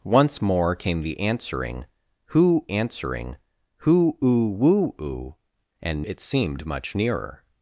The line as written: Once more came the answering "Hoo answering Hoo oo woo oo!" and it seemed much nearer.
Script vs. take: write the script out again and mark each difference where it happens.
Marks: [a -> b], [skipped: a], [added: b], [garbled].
Once more came the answering "Hoo answering Hoo oo woo oo!" and it seemed much nearer.